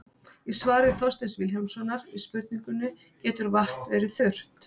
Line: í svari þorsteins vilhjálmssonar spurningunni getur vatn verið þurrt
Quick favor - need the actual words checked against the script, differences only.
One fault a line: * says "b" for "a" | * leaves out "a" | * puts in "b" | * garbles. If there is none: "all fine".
* puts in "við"